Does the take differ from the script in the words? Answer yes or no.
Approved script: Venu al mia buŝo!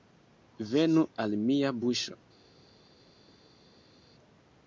no